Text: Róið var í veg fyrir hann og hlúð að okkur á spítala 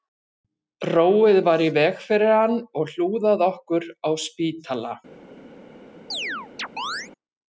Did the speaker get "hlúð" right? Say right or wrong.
right